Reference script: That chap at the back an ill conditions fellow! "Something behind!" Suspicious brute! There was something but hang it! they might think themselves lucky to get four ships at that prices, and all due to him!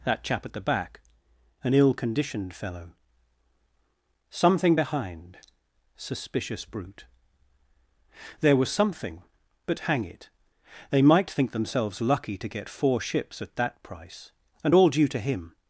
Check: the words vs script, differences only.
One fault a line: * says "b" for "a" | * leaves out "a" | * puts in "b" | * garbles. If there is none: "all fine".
* says "conditioned" for "conditions"
* says "price" for "prices"